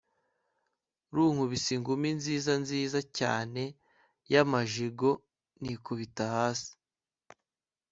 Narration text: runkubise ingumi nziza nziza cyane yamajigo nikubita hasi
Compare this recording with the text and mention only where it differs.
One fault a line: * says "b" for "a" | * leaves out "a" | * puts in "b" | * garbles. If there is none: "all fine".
all fine